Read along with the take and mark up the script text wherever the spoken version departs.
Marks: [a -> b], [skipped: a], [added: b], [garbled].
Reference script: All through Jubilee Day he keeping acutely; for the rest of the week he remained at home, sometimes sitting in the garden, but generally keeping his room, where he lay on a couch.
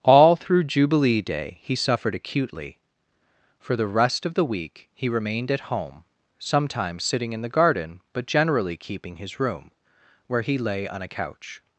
All through Jubilee Day he [keeping -> suffered] acutely; for the rest of the week he remained at home, sometimes sitting in the garden, but generally keeping his room, where he lay on a couch.